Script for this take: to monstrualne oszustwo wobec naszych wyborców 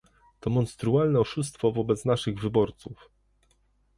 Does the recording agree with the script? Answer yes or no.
yes